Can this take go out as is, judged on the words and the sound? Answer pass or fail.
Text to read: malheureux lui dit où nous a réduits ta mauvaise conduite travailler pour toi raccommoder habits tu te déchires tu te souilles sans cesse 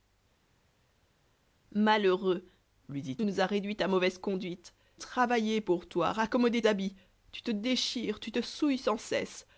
pass